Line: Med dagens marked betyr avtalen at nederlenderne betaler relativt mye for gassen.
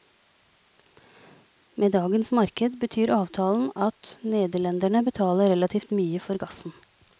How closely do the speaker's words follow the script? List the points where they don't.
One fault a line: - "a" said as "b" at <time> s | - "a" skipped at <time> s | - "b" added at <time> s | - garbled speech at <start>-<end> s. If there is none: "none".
none